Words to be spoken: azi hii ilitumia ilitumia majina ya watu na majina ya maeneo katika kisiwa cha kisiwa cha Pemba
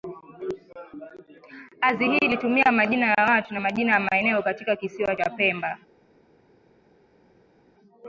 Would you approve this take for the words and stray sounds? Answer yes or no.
no